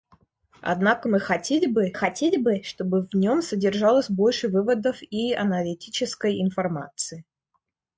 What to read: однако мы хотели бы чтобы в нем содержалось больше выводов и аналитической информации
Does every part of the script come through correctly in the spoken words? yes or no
no